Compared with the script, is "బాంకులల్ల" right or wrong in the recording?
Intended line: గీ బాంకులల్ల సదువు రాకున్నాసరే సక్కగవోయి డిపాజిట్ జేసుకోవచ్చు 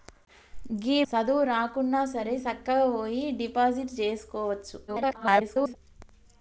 wrong